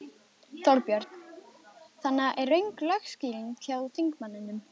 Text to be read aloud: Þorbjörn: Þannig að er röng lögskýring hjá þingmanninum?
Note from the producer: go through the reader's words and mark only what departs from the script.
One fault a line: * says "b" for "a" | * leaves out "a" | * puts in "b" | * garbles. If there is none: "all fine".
all fine